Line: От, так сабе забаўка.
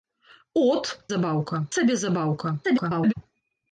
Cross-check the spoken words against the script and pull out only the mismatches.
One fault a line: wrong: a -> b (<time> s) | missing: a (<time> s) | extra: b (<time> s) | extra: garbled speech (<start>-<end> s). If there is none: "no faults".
wrong: так -> забаўка (1.1 s)
extra: garbled speech (2.6-3.1 s)